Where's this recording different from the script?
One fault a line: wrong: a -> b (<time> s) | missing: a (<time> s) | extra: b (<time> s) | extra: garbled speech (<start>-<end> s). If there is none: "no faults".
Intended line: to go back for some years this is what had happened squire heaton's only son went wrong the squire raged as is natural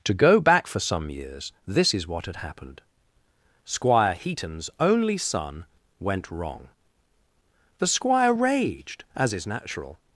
no faults